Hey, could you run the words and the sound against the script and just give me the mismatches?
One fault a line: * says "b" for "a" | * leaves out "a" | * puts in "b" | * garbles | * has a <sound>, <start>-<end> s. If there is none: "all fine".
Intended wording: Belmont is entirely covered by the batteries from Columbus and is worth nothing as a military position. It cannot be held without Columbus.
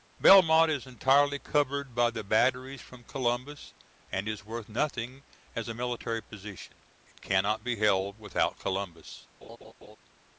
* has a laugh, 9.4-10.0 s